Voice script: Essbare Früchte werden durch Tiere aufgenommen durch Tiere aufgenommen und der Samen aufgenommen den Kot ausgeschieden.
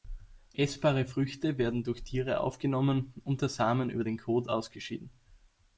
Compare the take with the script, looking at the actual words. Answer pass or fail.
fail